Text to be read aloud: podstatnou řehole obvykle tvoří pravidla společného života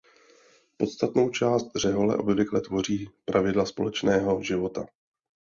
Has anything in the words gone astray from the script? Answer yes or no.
yes